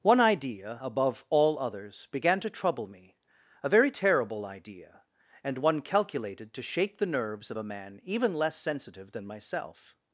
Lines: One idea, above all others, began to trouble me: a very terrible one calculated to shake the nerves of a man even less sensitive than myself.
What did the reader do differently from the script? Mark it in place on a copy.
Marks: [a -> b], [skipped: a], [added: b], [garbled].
One idea, above all others, began to trouble me: a very terrible [added: idea and] one calculated to shake the nerves of a man even less sensitive than myself.